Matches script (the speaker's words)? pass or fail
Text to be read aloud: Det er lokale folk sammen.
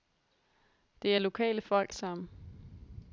pass